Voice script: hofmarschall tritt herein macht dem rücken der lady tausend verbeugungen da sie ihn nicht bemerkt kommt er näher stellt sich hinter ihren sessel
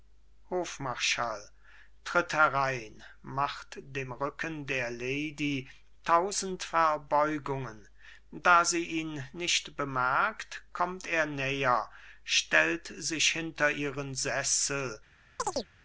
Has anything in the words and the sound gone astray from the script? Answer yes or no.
yes